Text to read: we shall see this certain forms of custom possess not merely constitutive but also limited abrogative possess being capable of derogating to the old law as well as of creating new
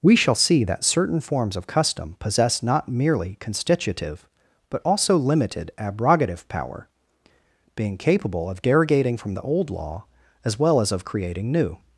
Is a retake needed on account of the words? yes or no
yes